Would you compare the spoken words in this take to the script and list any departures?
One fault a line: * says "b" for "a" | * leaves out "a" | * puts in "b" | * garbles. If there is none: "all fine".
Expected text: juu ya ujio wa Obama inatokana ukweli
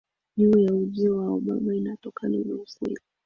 * puts in "na"